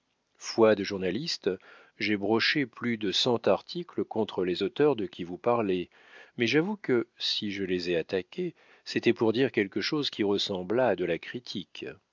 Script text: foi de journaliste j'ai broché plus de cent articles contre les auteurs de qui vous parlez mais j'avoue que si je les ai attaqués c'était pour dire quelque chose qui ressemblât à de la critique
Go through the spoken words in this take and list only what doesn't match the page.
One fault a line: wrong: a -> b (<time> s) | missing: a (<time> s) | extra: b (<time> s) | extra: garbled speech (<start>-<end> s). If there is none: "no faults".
no faults